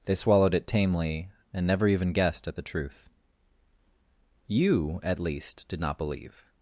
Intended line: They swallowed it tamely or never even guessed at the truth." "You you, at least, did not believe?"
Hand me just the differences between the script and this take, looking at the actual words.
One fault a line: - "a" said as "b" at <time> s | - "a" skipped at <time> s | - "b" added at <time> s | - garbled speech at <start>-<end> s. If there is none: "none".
- "or" said as "and" at 1.5 s
- "you" skipped at 5.0 s